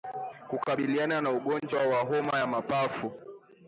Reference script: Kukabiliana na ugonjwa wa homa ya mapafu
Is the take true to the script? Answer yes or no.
yes